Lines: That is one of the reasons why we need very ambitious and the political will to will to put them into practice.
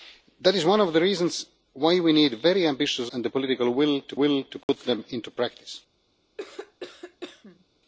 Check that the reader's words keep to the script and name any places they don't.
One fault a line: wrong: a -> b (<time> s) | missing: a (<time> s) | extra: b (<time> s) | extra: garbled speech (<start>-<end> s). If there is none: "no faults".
no faults